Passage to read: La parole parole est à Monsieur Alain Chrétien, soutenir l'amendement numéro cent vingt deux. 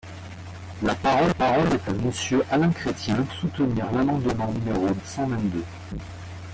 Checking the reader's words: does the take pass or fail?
pass